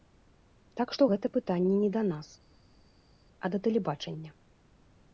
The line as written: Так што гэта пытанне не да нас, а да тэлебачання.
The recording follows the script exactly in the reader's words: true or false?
true